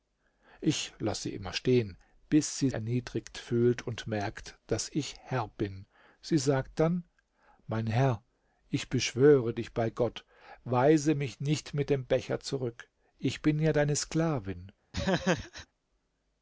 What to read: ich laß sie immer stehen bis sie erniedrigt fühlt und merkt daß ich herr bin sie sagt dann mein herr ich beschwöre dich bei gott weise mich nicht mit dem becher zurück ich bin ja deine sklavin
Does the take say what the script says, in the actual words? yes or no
yes